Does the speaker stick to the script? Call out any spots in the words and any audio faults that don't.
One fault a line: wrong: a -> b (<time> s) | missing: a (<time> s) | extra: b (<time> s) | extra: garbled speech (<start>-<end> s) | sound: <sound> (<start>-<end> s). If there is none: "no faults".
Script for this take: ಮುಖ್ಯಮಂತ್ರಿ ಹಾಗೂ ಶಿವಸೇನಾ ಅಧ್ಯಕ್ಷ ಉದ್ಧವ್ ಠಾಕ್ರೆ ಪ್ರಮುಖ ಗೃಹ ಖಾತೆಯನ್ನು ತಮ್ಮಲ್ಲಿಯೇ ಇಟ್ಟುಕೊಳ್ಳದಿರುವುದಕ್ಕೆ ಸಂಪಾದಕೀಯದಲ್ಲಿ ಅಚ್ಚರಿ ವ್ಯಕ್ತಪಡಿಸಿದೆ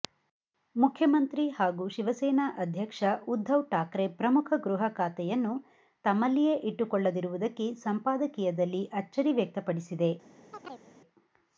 sound: chirp (10.5-10.9 s)